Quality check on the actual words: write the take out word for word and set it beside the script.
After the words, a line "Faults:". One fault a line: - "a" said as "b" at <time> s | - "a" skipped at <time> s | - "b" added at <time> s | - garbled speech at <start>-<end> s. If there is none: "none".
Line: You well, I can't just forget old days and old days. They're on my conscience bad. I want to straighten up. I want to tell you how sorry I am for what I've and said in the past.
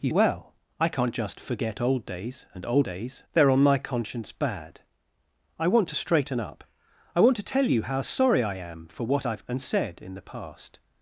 You well, I can't just forget old days and old days. They're on my conscience bad. I want to straighten up. I want to tell you how sorry I am for what I've and said in the past.
Faults:
none